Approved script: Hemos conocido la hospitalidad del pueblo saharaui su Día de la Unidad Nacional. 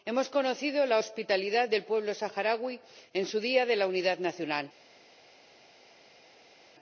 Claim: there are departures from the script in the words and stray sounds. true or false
true